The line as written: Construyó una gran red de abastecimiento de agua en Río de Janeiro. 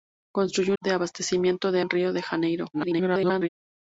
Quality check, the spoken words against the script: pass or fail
fail